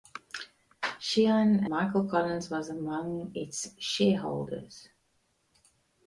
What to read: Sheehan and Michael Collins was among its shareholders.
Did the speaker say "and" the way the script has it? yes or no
no